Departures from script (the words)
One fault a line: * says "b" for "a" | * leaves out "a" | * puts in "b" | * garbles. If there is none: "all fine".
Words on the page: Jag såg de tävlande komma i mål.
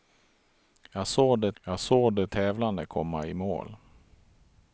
* puts in "jag såg de"